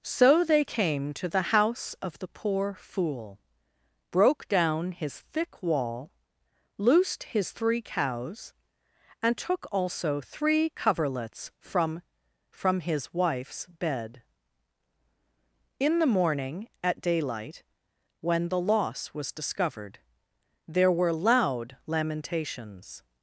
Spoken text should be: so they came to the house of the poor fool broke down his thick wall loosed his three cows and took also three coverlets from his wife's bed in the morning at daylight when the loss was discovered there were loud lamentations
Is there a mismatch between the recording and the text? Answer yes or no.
yes